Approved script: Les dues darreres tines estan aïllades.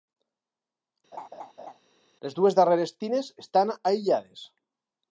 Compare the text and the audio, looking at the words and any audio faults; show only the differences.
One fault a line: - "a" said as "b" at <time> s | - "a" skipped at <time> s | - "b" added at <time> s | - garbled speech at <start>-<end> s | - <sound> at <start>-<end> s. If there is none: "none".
- laugh at 1.1-1.8 s